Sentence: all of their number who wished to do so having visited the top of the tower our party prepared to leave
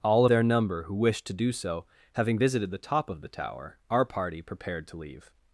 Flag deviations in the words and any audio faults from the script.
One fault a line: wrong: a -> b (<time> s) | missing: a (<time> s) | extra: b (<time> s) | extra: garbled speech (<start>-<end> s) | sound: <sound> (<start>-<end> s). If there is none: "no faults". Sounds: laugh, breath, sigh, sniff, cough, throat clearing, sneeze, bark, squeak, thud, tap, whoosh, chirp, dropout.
missing: of (0.2 s)